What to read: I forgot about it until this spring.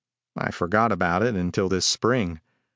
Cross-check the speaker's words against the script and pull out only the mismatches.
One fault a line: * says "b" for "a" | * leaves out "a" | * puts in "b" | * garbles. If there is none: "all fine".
all fine